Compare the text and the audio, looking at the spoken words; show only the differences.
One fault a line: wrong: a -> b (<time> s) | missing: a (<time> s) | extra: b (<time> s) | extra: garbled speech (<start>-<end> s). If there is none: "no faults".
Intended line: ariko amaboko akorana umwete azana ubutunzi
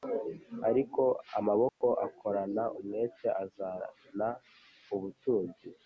no faults